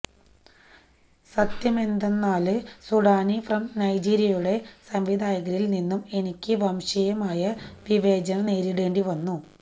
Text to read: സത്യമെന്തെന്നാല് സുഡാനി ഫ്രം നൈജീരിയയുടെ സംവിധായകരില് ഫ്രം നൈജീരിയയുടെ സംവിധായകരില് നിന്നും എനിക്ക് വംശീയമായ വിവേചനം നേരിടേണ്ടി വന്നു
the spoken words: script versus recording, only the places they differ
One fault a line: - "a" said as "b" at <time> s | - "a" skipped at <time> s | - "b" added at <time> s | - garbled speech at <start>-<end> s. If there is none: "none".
- "ഫ്രം നൈജീരിയയുടെ സംവിധായകരില്" skipped at 5.7 s